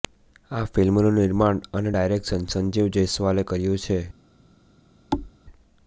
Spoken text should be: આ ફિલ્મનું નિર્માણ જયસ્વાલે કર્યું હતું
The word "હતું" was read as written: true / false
false